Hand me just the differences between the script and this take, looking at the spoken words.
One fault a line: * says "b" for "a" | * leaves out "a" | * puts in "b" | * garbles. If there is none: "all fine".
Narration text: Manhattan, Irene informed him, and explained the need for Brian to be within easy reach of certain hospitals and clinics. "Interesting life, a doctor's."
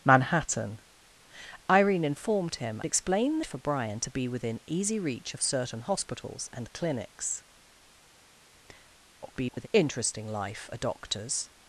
* leaves out "and"
* leaves out "need"
* garbles